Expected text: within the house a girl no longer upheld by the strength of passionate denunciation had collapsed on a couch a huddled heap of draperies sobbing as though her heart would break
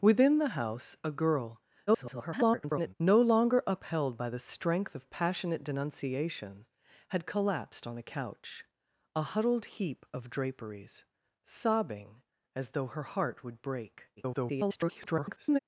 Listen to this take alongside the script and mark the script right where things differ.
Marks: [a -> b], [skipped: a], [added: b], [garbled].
within the house a girl [garbled] no longer upheld by the strength of passionate denunciation had collapsed on a couch a huddled heap of draperies sobbing as though her heart would break [garbled]